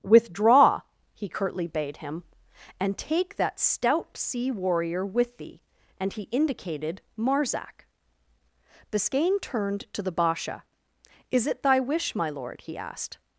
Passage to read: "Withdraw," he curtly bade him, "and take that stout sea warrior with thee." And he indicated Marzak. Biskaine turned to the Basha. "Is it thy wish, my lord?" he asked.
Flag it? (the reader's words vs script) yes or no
no